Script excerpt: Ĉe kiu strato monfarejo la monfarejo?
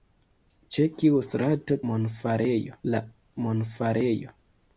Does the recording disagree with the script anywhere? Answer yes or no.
no